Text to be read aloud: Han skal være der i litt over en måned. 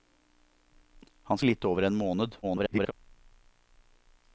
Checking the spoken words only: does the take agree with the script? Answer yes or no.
no